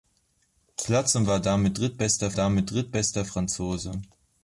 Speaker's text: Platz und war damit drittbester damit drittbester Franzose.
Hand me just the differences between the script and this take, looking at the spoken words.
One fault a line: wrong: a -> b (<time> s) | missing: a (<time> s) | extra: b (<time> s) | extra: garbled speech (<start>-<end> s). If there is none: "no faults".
no faults